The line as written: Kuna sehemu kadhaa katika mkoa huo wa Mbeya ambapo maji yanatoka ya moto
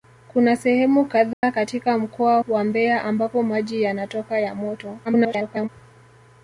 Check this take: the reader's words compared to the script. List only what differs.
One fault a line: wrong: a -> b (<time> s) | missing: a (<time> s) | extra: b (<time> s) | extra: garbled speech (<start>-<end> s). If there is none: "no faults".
missing: huo (2.4 s)
extra: garbled speech (5.0-5.7 s)